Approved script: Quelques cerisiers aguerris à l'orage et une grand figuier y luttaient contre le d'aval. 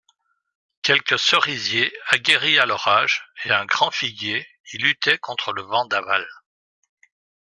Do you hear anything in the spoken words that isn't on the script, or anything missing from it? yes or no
yes